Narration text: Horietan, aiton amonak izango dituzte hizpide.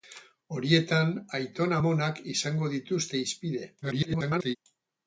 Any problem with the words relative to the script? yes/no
yes